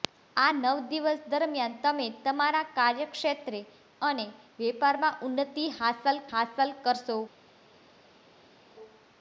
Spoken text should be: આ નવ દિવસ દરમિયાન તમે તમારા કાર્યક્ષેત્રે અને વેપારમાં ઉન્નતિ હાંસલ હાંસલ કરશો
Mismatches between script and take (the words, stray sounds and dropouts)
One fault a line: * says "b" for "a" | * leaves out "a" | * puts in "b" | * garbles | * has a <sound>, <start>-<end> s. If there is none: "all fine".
all fine